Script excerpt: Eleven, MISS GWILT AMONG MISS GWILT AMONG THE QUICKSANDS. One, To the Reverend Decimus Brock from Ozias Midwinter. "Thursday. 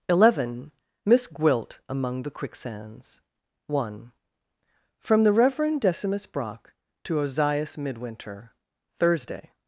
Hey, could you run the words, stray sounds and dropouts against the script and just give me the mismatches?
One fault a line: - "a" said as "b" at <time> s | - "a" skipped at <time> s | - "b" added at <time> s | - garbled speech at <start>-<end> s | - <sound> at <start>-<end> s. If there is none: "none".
- "MISS GWILT AMONG" skipped at 2.2 s
- "To" said as "From" at 5.0 s
- "from" said as "to" at 7.0 s